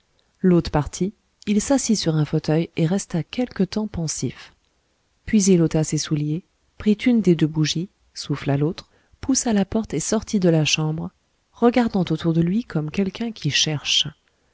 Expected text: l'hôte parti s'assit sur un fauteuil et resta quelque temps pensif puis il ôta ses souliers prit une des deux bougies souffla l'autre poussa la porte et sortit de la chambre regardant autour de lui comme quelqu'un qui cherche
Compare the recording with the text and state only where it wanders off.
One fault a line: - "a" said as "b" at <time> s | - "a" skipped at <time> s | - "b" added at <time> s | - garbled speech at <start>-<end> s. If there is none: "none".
- "il" added at 1.4 s